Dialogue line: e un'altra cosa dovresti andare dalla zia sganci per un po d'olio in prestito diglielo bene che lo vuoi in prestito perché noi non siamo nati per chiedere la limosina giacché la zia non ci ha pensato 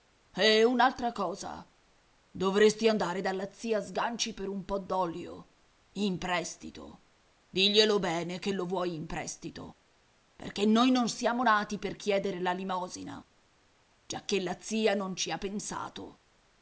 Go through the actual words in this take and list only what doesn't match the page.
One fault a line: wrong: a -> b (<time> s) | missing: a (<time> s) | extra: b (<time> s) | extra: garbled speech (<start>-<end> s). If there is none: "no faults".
no faults